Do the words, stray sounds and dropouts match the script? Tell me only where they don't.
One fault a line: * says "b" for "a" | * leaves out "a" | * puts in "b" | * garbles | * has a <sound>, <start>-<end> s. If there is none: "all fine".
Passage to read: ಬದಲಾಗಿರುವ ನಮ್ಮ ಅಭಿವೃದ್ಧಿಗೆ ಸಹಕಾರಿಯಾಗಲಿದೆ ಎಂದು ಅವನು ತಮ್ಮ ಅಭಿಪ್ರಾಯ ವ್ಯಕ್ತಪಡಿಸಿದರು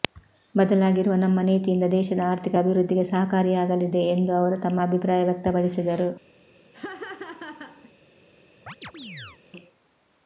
* puts in "ನೀತಿಯಿಂದ ದೇಶದ ಆರ್ಥಿಕ"
* says "ಅವರು" for "ಅವನು"
* has a laugh, 6.7-7.9 s
* has a chirp, 8.7-9.4 s